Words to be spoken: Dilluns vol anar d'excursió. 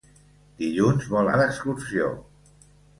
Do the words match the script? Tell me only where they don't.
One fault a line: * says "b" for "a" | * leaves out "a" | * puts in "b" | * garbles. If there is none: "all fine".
* leaves out "anar"